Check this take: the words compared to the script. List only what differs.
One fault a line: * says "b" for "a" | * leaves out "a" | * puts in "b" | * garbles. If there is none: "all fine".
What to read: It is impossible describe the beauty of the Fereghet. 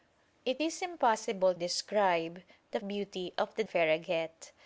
all fine